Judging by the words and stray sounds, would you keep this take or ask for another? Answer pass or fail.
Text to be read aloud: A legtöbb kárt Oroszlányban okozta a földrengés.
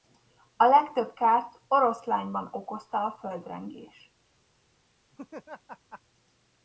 fail